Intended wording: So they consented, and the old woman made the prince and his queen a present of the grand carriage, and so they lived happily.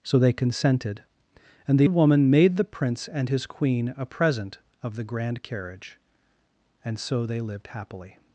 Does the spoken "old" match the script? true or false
false